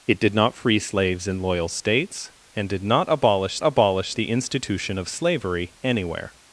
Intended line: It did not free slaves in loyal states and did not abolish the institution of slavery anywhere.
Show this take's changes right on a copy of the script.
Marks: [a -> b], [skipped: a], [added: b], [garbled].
It did not free slaves in loyal states and did not abolish [added: abolish] the institution of slavery anywhere.